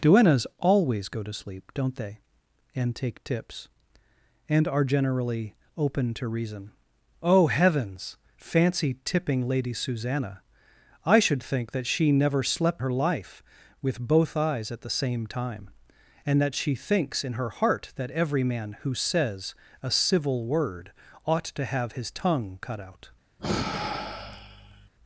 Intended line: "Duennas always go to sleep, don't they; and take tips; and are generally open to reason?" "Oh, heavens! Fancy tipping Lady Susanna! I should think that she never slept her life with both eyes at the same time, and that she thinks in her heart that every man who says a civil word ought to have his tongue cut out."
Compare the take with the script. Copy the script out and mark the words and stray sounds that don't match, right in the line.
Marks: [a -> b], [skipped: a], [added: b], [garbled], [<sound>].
"Duennas always go to sleep, don't they; and take tips; and are generally open to reason?" "Oh, heavens! Fancy tipping Lady Susanna! I should think that she never slept her life with both eyes at the same time, and that she thinks in her heart that every man who says a civil word ought to have his tongue cut out." [sigh]